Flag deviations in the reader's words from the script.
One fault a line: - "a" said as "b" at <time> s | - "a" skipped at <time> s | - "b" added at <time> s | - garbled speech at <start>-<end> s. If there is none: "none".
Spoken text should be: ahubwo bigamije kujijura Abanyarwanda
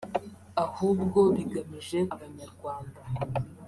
- "kujijura" skipped at 2.0 s